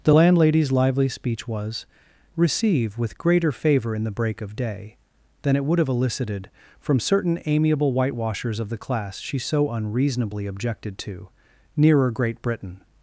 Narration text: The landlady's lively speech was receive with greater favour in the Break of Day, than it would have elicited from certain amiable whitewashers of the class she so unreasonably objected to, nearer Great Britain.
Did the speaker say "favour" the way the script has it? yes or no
yes